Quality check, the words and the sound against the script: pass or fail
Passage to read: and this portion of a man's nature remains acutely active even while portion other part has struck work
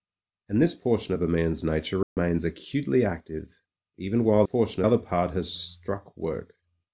fail